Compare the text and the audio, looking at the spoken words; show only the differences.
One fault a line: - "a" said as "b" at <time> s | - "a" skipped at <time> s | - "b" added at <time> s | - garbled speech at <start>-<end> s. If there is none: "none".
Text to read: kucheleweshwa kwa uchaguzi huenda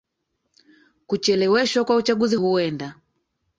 none